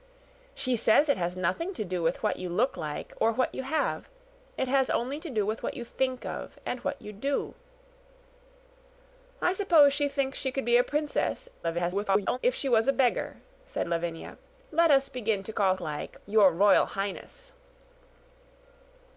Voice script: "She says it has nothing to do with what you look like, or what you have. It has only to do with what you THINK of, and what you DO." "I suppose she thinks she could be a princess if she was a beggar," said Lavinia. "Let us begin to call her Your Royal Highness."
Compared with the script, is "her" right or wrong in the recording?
wrong